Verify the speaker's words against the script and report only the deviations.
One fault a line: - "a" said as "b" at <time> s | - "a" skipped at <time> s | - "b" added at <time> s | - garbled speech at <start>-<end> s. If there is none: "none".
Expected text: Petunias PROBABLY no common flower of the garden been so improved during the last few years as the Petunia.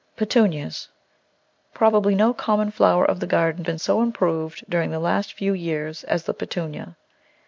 none